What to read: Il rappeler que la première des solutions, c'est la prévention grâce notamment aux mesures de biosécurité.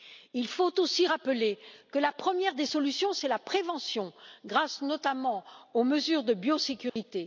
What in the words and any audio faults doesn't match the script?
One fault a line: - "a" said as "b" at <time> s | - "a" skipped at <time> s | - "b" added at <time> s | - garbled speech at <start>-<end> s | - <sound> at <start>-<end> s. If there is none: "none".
- "faut aussi" added at 0.5 s
- dropout at 6.9-7.0 s